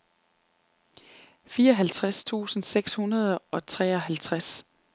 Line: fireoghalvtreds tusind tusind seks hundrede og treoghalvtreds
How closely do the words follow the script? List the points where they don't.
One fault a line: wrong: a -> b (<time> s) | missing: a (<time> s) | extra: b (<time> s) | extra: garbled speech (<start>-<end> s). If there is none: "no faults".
missing: tusind (2.6 s)